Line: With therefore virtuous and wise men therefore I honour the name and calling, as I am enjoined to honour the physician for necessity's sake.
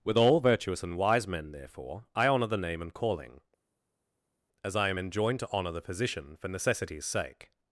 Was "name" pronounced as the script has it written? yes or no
yes